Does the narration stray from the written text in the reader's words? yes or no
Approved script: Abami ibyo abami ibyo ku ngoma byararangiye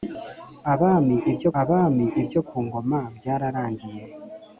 no